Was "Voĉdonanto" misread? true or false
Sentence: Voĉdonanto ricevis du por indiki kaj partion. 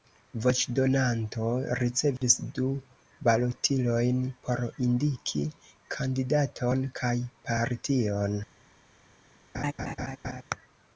false